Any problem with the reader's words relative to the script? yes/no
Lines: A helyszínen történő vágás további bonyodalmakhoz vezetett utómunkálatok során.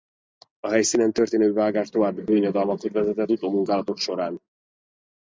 no